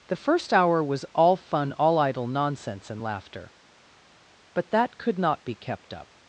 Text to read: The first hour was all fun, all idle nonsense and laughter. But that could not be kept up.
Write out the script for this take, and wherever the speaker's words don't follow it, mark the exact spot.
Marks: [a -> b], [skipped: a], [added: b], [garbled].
The first hour was all fun, all idle nonsense and laughter. But that could not be kept up.